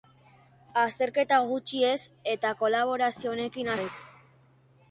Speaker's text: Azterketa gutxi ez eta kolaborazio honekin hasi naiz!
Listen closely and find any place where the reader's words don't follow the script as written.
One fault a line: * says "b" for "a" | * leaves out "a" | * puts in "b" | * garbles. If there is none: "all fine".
* leaves out "hasi"